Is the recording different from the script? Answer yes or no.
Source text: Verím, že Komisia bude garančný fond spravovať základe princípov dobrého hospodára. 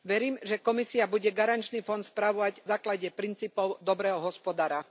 no